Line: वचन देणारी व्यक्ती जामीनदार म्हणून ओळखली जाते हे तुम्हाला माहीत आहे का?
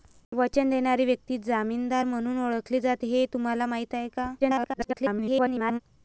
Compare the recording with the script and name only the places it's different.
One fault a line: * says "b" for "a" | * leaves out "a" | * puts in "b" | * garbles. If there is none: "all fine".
* garbles